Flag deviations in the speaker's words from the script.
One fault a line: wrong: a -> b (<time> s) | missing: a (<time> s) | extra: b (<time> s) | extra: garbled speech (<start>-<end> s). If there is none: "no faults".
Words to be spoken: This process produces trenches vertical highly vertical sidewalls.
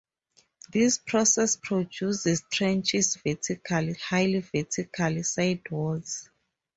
no faults